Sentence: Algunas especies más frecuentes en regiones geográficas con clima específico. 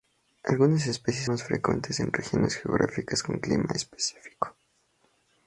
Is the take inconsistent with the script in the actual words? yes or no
no